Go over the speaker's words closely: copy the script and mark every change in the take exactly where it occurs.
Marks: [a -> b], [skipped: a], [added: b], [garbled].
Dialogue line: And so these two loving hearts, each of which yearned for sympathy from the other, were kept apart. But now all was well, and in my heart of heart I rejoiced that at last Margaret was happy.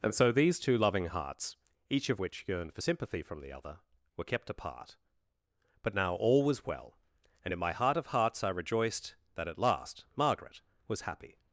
And so these two loving hearts, each of which yearned for sympathy from the other, were kept apart. But now all was well, and in my heart of [heart -> hearts] I rejoiced that at last Margaret was happy.